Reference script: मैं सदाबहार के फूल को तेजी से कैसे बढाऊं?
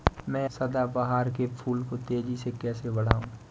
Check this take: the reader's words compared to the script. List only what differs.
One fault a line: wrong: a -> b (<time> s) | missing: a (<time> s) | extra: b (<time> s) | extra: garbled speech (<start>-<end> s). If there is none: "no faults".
no faults